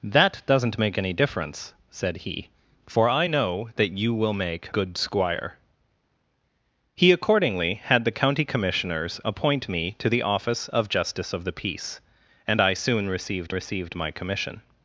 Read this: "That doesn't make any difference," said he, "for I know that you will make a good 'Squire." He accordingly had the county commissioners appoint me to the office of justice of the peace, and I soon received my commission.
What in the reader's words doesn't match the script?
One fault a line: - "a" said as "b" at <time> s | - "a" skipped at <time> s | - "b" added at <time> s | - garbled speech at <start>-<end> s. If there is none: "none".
- "a" skipped at 4.7 s
- "received" added at 13.5 s